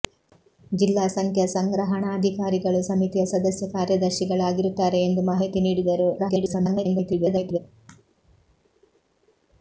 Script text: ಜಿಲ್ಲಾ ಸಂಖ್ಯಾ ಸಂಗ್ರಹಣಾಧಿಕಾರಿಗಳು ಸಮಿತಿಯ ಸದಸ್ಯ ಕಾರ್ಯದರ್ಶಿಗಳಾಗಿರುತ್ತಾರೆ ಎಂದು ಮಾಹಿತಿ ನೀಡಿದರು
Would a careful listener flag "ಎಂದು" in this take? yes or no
no